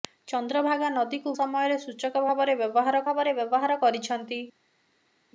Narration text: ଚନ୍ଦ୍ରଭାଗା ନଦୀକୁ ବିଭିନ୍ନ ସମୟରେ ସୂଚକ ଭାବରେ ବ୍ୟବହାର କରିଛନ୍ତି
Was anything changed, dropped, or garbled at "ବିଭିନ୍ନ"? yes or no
yes